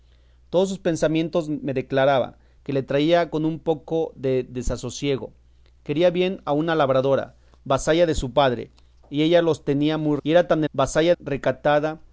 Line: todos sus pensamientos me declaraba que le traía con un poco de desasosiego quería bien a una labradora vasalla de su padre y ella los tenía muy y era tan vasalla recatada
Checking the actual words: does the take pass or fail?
pass